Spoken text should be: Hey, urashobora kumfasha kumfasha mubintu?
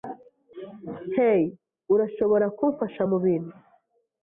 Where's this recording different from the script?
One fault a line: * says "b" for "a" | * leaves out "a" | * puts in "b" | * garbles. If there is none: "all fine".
* leaves out "kumfasha"